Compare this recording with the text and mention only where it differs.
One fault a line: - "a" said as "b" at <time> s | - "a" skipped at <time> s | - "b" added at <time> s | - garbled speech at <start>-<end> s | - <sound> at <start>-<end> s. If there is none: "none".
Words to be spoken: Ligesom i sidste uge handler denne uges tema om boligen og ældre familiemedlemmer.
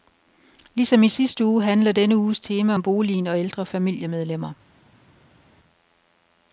none